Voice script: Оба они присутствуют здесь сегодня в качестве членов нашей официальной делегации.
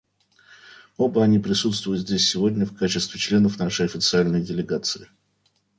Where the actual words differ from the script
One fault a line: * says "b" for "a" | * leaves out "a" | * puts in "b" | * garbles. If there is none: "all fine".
all fine